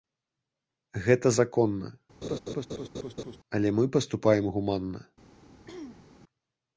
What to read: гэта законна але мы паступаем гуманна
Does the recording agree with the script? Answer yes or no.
yes